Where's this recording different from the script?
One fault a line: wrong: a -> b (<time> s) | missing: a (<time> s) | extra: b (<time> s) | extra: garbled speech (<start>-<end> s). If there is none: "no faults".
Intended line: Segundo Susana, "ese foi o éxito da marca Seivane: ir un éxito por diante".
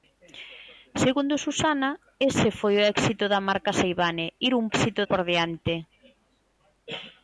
no faults